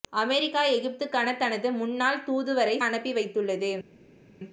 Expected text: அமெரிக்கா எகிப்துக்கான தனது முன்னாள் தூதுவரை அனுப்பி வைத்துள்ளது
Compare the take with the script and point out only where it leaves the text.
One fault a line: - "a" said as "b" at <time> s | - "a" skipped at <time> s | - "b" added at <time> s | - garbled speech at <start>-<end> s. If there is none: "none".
none